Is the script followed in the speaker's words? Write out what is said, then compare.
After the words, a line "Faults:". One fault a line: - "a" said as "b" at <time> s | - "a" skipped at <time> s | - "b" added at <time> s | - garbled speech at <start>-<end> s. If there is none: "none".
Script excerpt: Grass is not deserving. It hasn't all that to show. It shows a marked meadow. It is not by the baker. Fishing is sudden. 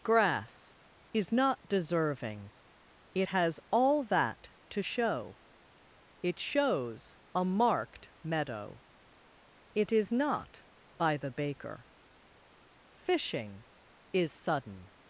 Grass is not deserving. It has all that to show. It shows a marked meadow. It is not by the baker. Fishing is sudden.
Faults:
- "hasn't" said as "has" at 3.3 s